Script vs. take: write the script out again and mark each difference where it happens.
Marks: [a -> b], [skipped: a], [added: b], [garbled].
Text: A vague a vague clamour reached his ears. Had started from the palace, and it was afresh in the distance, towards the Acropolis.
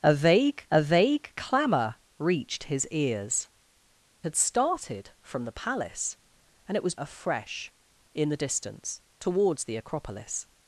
A vague a vague clamour reached his ears. Had started from the palace, and it was afresh in the distance, towards the Acropolis.